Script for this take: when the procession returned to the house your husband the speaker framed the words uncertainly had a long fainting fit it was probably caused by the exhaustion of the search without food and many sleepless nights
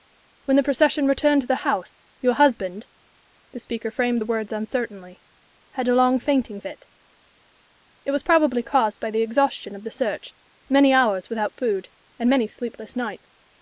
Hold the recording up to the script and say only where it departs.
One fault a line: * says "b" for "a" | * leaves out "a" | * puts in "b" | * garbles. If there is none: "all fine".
* puts in "many hours"